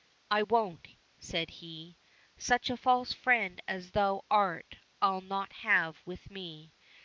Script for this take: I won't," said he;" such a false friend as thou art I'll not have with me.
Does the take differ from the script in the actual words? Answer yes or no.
no